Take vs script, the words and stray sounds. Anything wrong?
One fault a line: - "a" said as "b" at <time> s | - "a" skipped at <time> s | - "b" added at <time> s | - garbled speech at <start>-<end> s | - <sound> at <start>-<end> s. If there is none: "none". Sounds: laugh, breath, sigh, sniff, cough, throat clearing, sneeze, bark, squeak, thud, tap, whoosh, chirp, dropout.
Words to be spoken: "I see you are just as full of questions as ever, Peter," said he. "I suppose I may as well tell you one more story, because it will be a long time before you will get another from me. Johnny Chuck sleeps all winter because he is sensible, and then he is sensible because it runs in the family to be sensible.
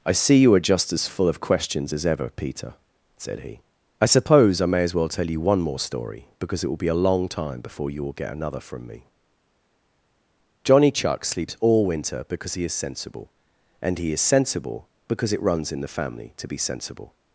- "then" skipped at 14.0 s